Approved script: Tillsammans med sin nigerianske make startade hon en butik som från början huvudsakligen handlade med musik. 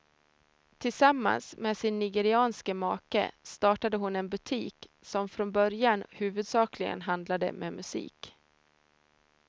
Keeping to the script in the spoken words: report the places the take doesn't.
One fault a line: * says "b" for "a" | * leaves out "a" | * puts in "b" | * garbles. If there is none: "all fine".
all fine